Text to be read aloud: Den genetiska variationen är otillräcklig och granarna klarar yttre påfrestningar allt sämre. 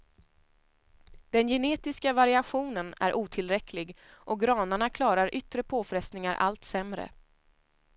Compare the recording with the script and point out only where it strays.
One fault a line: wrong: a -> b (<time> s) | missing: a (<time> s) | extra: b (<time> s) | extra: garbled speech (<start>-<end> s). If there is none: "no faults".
no faults